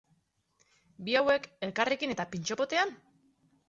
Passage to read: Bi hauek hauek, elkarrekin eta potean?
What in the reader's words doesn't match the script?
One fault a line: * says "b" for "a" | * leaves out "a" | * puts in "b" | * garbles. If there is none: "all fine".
* leaves out "hauek"
* puts in "pintxo"